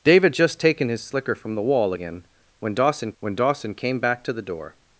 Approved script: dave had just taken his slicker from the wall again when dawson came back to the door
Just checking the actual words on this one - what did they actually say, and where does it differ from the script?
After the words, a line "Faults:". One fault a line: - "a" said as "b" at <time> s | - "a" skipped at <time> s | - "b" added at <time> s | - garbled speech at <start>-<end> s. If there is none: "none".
dave had just taken his slicker from the wall again when dawson when dawson came back to the door
Faults:
- "when dawson" added at 3.2 s